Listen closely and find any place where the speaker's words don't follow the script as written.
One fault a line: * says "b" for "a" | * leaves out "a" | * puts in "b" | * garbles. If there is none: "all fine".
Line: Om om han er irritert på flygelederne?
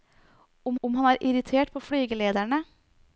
all fine